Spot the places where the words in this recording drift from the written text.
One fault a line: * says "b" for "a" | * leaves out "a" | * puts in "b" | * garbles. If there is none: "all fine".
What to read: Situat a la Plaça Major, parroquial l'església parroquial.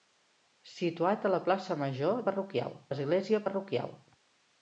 all fine